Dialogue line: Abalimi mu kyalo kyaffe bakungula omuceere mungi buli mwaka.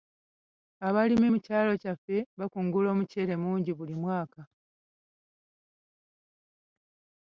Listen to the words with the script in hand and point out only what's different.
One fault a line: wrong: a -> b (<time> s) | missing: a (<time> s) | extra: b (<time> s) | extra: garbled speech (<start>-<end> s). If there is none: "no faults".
no faults